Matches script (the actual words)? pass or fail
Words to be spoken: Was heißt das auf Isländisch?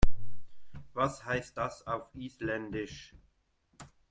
pass